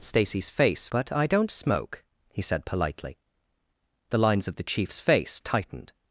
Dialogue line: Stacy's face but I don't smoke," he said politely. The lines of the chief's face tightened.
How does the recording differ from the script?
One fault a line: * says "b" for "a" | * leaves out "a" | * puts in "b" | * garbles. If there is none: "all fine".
all fine